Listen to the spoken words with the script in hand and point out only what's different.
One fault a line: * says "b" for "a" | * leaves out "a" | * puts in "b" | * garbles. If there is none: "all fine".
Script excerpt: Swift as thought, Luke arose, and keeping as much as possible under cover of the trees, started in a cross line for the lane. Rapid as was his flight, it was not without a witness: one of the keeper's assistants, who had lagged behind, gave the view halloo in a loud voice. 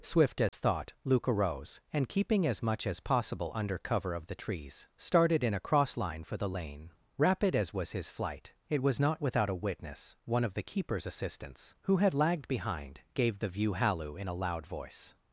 all fine